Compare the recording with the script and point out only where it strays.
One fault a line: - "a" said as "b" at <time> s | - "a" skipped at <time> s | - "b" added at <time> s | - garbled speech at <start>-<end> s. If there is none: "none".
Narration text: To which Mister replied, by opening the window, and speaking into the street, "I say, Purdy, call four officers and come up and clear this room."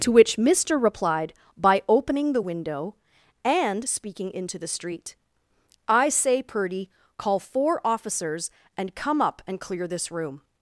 none